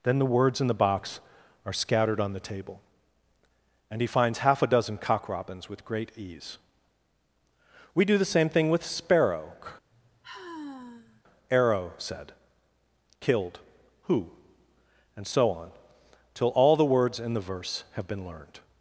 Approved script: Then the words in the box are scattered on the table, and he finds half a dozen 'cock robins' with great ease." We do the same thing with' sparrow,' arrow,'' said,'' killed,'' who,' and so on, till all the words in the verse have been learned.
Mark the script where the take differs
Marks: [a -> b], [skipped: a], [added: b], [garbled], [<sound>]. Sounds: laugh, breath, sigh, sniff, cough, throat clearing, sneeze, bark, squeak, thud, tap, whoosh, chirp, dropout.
Then the words in the box are scattered on the table, and he finds half a dozen 'cock robins' with great ease." We do the same thing with' sparrow,' [sigh] arrow,'' said,'' killed,'' who,' and so on, till all the words in the verse have been learned.